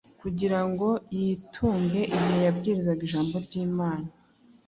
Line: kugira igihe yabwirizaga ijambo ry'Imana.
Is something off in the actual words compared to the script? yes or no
yes